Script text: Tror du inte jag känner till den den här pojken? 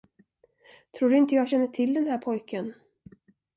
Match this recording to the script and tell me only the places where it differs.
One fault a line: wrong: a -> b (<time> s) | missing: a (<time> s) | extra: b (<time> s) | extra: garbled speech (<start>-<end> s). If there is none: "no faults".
missing: den (2.1 s)